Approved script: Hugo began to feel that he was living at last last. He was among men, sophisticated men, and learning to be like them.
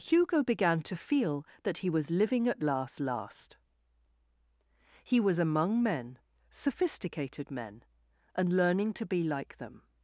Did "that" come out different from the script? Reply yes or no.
no